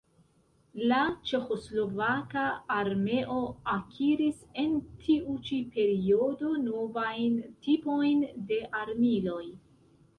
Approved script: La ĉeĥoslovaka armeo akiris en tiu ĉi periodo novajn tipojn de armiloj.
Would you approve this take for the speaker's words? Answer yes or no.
yes